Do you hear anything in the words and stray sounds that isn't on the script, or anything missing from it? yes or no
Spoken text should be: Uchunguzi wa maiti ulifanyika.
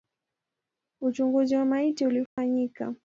yes